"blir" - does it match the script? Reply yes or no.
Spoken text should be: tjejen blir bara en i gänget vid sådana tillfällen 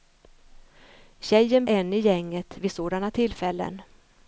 no